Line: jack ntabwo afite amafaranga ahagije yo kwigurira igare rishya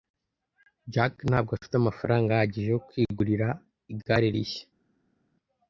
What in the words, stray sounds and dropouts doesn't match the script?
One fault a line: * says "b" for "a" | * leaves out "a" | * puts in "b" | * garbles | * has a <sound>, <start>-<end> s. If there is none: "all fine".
all fine